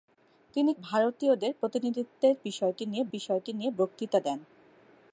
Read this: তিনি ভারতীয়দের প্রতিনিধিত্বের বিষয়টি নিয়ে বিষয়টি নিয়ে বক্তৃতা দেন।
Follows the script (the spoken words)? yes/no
yes